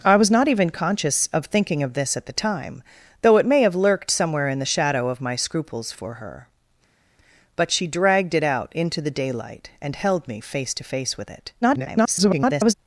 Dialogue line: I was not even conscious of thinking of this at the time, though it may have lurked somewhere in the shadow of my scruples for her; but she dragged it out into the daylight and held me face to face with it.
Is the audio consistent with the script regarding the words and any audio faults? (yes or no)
no